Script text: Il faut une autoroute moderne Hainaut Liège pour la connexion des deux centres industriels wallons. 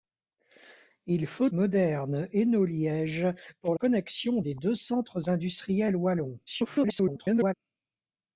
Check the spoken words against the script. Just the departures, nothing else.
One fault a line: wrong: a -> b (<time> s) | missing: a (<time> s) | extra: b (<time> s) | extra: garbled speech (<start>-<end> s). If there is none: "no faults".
missing: une autoroute (1.5 s)
missing: la (3.7 s)
extra: garbled speech (6.5-7.5 s)